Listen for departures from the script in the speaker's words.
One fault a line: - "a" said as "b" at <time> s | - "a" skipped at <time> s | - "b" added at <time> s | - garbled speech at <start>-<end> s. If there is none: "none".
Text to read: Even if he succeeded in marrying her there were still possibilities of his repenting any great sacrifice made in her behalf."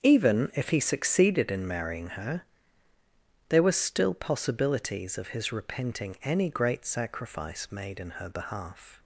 none